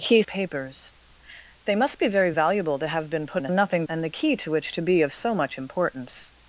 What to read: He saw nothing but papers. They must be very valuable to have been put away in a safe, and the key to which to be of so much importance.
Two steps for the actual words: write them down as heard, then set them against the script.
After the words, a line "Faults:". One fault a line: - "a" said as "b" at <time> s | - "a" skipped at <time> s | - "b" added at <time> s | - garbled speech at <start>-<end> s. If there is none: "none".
He papers. They must be very valuable to have been put in a nothing, and the key to which to be of so much importance.
Faults:
- "saw nothing but" skipped at 0.2 s
- "away" skipped at 3.4 s
- "safe" said as "nothing" at 3.5 s